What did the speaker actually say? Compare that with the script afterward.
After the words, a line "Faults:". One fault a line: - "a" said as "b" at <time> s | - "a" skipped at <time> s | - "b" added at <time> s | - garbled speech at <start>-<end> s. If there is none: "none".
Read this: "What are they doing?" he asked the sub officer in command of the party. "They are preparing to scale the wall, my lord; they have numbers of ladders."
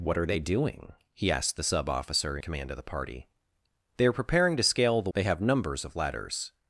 "What are they doing?" he asked the sub officer command of the party. "They are preparing to scale the; they have numbers of ladders."
Faults:
- "in" skipped at 2.4 s
- "wall my lord" skipped at 5.1 s